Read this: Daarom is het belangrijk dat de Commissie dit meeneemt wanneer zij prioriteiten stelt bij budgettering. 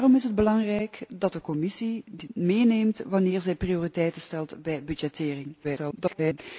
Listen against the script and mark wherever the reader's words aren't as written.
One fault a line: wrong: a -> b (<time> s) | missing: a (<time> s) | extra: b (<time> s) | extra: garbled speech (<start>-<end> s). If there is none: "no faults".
extra: garbled speech (5.6-6.4 s)